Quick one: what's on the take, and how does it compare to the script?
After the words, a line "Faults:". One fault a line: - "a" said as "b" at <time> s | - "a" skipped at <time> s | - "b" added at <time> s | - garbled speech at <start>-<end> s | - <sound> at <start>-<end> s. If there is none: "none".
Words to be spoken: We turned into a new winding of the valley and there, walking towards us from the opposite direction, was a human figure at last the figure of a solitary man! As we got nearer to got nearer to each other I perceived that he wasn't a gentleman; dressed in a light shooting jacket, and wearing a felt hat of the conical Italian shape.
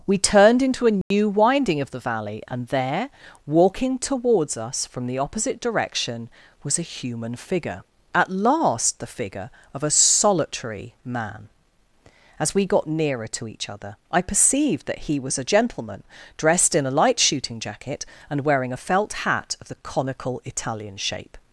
We turned into a new winding of the valley and there, walking towards us from the opposite direction, was a human figure at last the figure of a solitary man! As we got nearer to each other I perceived that he was a gentleman; dressed in a light shooting jacket, and wearing a felt hat of the conical Italian shape.
Faults:
- dropout at 1.0-1.1 s
- "got nearer to" skipped at 13.5 s
- "wasn't" said as "was" at 15.2 s